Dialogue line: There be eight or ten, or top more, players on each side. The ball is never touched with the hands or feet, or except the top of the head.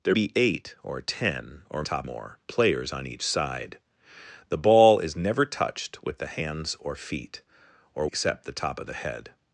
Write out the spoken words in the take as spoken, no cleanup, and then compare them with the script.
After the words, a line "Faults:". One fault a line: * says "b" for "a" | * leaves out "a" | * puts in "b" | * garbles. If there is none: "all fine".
There be eight or ten, or top more, players on each side. The ball is never touched with the hands or feet, or except the top of the head.
Faults:
all fine